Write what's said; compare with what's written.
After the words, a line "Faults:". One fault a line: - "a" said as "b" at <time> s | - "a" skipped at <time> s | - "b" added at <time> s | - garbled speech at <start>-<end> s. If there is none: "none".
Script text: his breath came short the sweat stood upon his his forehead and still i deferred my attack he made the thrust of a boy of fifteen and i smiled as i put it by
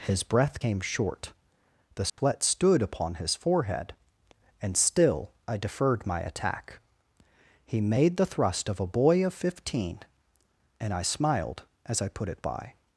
his breath came short the sweat stood upon his forehead and still i deferred my attack he made the thrust of a boy of fifteen and i smiled as i put it by
Faults:
- "his" skipped at 3.3 s